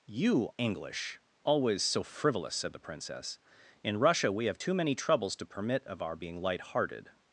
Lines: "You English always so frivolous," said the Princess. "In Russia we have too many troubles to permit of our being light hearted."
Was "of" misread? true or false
false